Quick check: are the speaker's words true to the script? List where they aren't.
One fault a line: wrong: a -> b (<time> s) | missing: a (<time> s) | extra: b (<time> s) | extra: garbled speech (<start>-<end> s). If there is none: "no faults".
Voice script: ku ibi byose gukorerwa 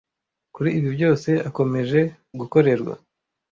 wrong: ku -> kuri (0.6 s)
extra: akomeje (1.5 s)